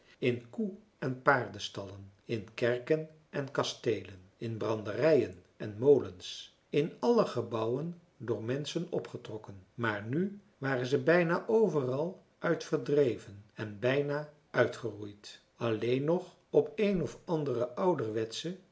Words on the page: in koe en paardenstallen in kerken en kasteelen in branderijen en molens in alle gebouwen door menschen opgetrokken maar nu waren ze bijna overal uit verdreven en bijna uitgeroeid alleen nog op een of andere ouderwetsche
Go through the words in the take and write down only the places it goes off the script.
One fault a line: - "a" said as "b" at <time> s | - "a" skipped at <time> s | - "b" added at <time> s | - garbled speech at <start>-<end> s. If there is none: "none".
none